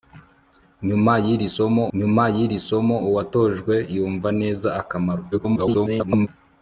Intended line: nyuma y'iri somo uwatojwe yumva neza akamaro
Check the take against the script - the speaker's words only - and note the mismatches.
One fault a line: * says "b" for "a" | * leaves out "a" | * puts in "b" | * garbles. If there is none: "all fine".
* puts in "nyuma y'iri somo"
* garbles